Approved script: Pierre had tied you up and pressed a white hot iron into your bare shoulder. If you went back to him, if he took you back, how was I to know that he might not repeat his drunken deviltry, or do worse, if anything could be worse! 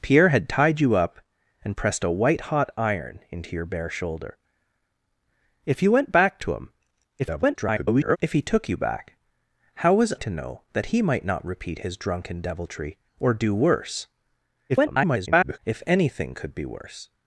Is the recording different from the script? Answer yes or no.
yes